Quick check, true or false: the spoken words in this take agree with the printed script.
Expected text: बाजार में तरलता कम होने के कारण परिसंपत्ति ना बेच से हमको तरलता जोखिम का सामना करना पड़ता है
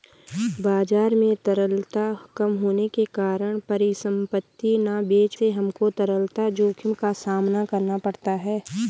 true